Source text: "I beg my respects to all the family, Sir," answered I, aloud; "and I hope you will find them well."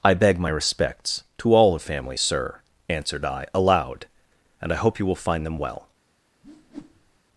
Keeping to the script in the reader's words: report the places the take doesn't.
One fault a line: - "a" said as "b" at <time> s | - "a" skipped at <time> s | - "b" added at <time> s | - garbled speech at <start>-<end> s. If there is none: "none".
none